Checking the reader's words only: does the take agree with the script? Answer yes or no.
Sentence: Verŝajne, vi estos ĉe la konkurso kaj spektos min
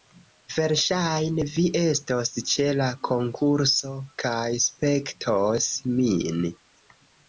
yes